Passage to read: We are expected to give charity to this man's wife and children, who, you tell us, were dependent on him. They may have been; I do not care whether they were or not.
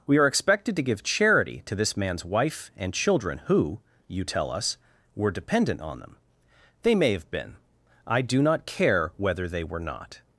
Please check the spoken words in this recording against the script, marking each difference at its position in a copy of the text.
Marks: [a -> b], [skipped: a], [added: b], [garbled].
We are expected to give charity to this man's wife and children, who, you tell us, were dependent on [him. -> them] They may have been; I do not care whether they were [skipped: or] not.